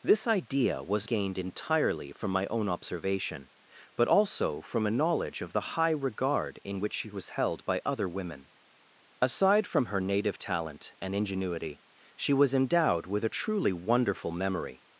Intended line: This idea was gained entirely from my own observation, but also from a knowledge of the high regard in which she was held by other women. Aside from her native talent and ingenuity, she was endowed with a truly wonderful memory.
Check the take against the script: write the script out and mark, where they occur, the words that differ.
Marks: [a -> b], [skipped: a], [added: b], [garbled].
This idea was gained entirely from my own observation, but also from a knowledge of the high regard in which she was held by other women. Aside from her native talent and ingenuity, she was endowed with a truly wonderful memory.